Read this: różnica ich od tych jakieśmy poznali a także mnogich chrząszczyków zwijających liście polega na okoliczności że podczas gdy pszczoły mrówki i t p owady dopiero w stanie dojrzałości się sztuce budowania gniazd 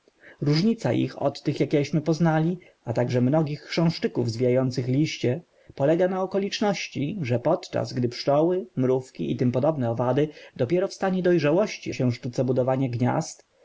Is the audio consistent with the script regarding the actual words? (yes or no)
yes